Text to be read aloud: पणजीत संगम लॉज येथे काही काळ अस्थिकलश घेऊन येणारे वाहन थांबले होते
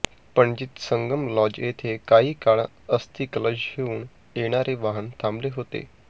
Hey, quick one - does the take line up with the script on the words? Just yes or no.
yes